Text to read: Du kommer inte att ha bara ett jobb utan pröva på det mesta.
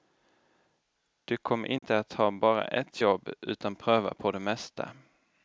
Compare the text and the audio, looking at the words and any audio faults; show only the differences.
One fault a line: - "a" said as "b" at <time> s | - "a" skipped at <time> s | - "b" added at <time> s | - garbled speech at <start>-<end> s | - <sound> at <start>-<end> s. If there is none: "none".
- dropout at 1.8-1.8 s